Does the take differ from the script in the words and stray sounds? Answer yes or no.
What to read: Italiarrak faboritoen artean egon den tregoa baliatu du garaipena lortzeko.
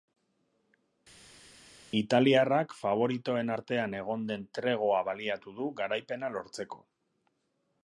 no